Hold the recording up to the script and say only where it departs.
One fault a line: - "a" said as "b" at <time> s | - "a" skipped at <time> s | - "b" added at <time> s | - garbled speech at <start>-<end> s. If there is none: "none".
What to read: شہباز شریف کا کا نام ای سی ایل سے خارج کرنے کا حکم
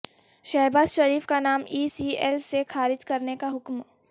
- "کا" skipped at 1.4 s